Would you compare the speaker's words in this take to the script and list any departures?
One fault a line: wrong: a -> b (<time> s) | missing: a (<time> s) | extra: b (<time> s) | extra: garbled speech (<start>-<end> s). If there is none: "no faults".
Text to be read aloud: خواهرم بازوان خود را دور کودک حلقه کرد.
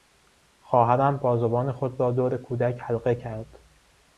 no faults